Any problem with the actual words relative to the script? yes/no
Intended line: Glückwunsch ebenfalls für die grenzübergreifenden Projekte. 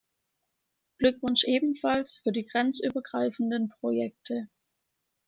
no